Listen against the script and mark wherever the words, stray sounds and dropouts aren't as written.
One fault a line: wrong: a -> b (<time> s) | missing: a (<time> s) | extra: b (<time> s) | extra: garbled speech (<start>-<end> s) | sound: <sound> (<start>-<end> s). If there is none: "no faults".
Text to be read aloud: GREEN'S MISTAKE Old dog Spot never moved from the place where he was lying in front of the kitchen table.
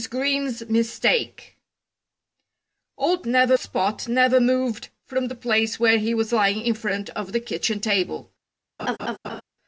wrong: dog -> never (3.2 s)
sound: laugh (8.8-9.4 s)